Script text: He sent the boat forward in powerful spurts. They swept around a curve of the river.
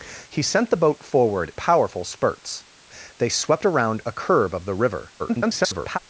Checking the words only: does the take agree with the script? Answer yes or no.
no